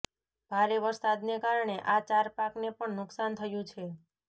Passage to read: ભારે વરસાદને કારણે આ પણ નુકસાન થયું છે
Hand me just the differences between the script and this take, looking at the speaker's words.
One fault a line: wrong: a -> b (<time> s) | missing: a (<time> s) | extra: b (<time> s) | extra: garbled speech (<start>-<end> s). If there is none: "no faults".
extra: ચાર પાકને (2.1 s)